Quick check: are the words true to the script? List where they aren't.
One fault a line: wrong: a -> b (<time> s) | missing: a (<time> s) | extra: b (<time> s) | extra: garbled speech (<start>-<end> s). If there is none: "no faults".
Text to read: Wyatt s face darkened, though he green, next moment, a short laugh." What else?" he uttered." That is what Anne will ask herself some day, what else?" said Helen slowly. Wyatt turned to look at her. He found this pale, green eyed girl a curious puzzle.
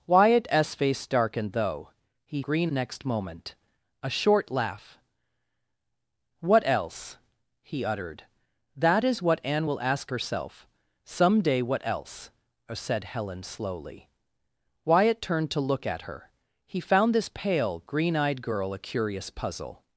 no faults